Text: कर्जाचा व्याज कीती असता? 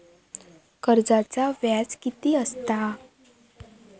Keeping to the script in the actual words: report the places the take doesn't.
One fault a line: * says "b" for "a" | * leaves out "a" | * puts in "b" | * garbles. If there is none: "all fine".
all fine